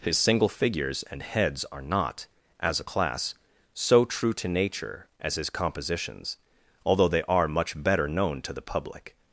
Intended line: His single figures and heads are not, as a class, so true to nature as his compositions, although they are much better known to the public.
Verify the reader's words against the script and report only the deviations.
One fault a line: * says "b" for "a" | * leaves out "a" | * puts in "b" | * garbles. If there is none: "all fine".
all fine